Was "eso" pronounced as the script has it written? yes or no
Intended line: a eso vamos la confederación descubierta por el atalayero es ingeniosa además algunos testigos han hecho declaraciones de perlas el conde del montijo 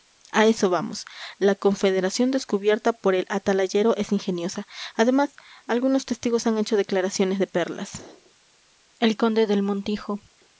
yes